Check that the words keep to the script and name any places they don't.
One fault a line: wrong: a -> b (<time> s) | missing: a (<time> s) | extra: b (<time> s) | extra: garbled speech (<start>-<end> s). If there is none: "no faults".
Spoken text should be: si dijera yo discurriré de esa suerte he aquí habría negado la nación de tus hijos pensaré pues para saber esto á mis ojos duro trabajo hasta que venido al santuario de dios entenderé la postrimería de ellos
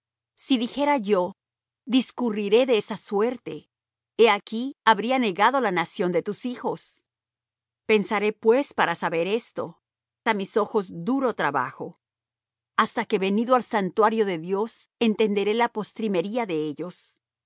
no faults